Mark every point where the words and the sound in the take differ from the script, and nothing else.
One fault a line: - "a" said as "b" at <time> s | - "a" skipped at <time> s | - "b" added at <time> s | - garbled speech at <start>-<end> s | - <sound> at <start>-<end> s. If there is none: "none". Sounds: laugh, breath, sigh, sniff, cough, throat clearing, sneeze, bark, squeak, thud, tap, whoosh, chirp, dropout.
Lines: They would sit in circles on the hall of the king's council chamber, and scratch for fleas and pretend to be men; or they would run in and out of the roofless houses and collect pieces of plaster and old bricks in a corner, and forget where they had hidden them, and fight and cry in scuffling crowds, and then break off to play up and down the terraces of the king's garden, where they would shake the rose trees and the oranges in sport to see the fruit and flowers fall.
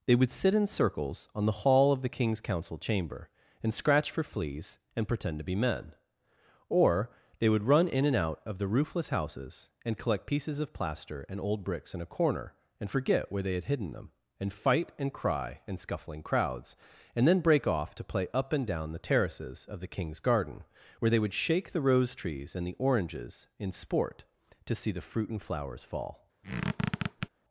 - squeak at 26.4-27.3 s